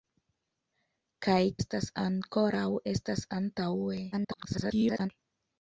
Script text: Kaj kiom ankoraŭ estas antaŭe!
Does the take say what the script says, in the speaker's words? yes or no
no